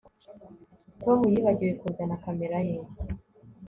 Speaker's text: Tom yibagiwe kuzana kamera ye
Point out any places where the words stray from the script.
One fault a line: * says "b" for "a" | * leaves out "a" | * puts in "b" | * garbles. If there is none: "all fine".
all fine